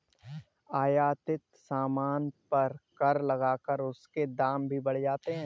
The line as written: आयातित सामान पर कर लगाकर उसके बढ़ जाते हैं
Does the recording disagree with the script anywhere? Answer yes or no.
yes